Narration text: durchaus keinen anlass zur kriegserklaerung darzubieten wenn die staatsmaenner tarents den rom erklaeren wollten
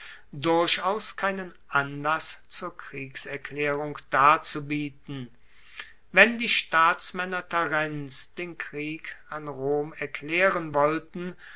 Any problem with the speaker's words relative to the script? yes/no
yes